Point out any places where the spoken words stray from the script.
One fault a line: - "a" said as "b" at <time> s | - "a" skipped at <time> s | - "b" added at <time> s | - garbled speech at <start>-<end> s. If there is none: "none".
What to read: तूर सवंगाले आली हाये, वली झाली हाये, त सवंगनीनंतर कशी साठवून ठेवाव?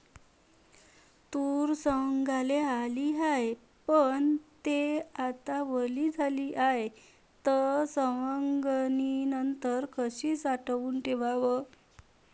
- "पन थे आता" added at 3.9 s